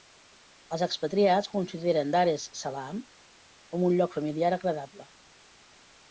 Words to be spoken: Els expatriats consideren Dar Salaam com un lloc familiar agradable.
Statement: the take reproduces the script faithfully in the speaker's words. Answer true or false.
false